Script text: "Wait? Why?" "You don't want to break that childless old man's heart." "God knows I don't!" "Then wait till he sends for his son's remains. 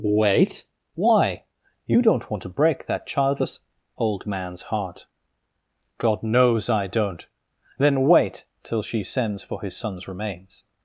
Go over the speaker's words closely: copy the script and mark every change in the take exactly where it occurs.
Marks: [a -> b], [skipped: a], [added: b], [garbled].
"Wait? Why?" "You don't want to break that childless old man's heart." "God knows I don't!" "Then wait till [he -> she] sends for his son's remains.